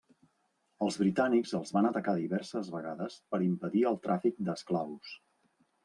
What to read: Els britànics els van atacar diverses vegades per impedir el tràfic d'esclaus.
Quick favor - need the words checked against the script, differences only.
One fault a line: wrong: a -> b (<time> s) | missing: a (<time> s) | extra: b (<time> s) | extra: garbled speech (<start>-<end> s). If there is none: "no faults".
no faults